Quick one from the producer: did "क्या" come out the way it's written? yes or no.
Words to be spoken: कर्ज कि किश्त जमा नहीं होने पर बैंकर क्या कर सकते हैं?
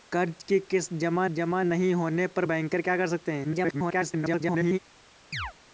yes